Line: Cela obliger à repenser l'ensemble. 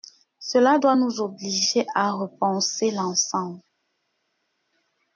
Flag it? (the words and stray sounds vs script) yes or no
yes